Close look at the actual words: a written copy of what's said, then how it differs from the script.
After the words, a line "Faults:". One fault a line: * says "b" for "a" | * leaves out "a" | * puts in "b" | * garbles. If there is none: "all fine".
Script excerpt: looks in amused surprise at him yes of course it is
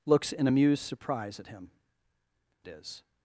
looks in amused surprise at him it is
Faults:
* leaves out "yes of course"